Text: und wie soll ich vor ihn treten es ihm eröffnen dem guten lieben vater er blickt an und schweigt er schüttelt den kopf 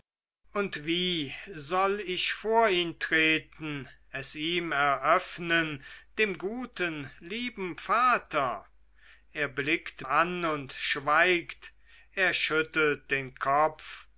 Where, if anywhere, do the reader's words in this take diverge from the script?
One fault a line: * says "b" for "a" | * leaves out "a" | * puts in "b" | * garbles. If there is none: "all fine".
all fine